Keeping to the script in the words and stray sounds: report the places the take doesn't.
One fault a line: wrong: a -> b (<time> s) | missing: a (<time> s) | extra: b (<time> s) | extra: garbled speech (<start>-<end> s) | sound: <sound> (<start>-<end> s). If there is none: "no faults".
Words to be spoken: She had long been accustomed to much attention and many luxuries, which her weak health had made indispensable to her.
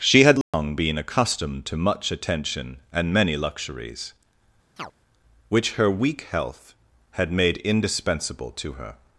sound: dropout (0.4-0.5 s)
sound: chirp (4.8-4.9 s)